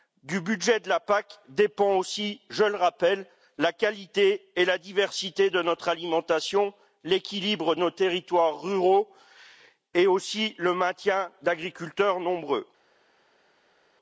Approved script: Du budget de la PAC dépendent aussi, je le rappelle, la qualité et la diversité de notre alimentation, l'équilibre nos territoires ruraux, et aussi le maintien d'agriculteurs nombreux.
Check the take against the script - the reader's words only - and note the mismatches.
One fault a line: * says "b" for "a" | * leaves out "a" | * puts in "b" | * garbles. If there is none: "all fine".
all fine